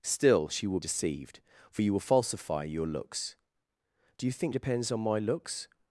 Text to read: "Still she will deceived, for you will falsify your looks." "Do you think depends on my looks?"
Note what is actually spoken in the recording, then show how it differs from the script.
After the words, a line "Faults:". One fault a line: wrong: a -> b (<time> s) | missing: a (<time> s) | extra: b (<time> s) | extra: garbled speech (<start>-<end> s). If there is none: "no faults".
"Still she will deceived, for you will falsify your looks." "Do you think depends on my looks?"
Faults:
no faults